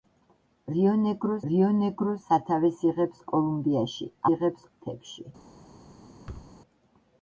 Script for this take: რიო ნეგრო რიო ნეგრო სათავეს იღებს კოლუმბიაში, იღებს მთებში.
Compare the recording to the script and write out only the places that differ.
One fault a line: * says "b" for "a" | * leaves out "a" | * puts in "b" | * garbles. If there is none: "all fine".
all fine